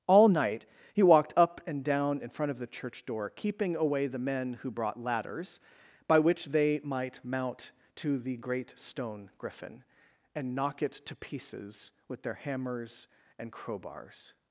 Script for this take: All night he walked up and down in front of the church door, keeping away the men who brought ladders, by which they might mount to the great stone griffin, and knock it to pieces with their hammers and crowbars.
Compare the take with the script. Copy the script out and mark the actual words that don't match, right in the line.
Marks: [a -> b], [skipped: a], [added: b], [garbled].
All night he walked up and down in front of the church door, keeping away the men who brought ladders, by which they might mount to the great stone griffin, and knock it to pieces with their hammers and crowbars.